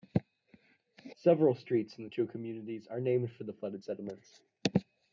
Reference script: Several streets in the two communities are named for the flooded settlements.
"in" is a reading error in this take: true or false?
false